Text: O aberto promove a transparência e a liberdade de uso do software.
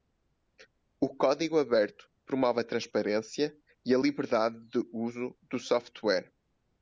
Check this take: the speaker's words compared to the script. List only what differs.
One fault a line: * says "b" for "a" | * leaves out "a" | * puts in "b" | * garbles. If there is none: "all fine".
* puts in "código"